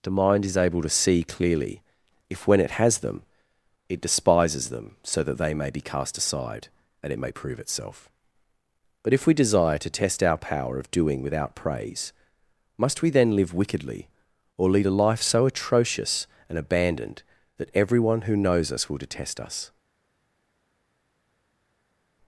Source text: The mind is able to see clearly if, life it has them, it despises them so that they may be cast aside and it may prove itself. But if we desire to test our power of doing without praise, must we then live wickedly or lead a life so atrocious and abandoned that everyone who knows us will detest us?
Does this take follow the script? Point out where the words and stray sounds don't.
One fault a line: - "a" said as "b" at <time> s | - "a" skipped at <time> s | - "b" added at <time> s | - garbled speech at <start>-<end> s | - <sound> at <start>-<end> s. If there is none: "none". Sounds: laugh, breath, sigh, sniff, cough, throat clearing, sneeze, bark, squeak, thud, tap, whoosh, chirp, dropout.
- "life" said as "when" at 2.5 s